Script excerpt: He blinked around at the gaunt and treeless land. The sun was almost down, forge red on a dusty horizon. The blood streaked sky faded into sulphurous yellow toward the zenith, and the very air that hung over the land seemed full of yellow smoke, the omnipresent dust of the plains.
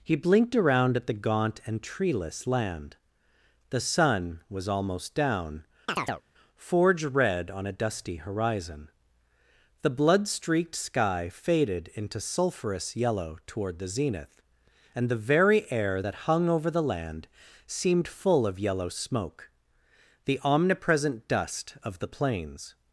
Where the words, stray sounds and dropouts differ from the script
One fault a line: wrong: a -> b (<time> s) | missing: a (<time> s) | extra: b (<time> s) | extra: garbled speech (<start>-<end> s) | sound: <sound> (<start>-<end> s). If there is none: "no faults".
sound: chirp (5.9-6.2 s)